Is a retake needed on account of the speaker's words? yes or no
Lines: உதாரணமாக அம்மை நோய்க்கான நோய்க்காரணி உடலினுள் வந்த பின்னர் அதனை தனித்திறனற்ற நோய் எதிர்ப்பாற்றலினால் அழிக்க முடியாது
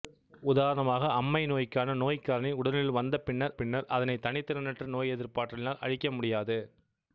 yes